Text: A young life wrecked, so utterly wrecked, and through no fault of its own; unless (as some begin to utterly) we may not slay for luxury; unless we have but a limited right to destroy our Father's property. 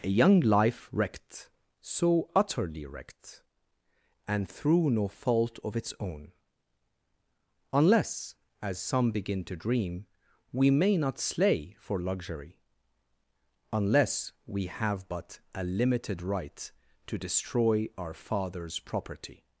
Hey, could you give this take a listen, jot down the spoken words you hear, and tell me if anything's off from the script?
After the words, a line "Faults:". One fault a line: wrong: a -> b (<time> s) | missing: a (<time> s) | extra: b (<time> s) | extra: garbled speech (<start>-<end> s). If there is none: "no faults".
A young life wrecked, so utterly wrecked, and through no fault of its own; unless (as some begin to dream) we may not slay for luxury; unless we have but a limited right to destroy our Father's property.
Faults:
wrong: utterly -> dream (9.6 s)